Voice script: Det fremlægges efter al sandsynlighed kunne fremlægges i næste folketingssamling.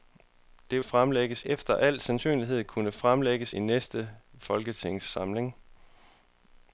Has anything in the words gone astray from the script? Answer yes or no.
no